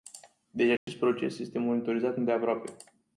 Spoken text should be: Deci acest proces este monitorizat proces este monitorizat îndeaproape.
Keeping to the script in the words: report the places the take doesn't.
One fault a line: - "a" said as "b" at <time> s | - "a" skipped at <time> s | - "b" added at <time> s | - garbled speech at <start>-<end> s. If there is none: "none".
- "proces este monitorizat" skipped at 2.2 s